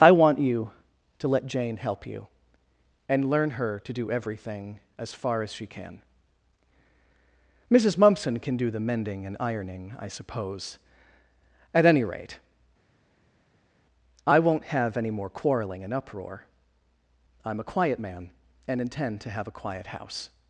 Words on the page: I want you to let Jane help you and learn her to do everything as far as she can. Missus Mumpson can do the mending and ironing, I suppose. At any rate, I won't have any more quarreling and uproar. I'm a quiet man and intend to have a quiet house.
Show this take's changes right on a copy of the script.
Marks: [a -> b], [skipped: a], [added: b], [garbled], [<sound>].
I want you to let Jane help you and learn her to do everything as far as she can. Missus Mumpson can do the mending and ironing, I suppose. At any rate, I won't have any more quarreling and uproar. I'm a quiet man and intend to have a quiet house.